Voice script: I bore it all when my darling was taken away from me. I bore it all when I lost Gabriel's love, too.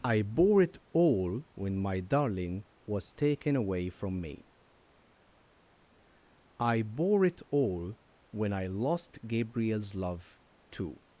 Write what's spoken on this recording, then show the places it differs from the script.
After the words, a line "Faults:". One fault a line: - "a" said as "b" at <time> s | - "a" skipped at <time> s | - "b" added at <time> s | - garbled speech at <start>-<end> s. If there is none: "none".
I bore it all when my darling was taken away from me. I bore it all when I lost Gabriel's love, too.
Faults:
none